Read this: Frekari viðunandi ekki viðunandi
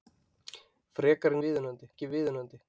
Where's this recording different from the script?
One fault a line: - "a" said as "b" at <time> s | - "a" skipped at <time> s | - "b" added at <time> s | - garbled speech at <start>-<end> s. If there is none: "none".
none